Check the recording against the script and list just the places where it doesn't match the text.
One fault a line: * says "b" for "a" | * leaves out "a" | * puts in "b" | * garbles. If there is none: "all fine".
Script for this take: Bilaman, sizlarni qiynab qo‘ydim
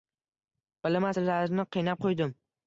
all fine